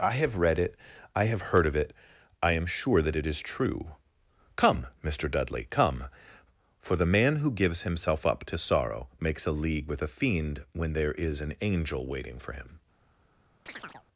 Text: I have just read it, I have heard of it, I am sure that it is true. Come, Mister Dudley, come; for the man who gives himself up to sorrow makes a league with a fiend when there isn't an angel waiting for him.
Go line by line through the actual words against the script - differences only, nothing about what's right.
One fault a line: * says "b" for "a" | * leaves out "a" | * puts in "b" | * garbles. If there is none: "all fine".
* leaves out "just"
* says "is" for "isn't"